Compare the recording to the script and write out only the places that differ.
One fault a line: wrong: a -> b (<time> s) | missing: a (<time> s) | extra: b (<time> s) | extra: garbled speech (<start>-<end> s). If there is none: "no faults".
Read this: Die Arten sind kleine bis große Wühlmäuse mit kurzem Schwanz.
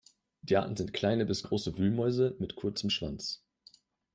no faults